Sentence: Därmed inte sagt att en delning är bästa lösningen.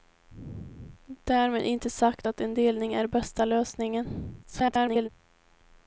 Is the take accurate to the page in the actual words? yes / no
no